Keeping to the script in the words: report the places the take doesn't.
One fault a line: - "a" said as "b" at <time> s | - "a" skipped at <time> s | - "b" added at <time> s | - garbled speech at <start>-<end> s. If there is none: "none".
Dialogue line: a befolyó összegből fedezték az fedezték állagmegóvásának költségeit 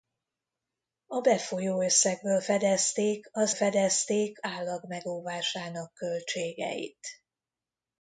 none